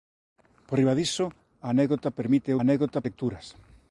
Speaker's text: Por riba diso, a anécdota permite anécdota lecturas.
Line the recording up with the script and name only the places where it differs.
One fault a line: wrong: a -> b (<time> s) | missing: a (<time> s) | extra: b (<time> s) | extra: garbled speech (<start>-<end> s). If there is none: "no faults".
no faults